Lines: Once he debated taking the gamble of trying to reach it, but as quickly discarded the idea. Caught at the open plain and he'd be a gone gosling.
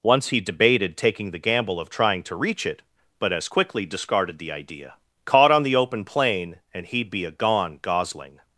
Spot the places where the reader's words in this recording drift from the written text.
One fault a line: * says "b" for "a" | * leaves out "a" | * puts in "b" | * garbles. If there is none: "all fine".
* says "on" for "at"